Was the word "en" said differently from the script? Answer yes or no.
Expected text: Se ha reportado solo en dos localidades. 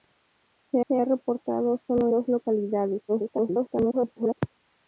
yes